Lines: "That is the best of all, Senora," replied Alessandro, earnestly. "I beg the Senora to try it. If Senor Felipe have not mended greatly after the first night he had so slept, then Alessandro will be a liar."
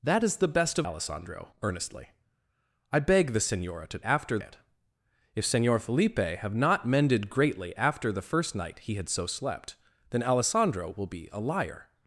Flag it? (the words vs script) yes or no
yes